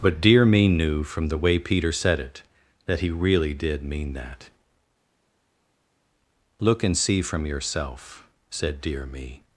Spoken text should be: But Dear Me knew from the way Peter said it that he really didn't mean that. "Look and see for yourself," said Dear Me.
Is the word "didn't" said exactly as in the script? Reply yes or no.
no